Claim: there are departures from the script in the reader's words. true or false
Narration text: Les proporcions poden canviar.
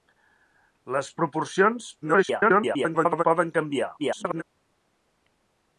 true